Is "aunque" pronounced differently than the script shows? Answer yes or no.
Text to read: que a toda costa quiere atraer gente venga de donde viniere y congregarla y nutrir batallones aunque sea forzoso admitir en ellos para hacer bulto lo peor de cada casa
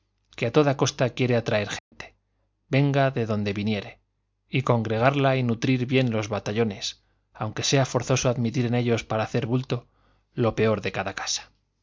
no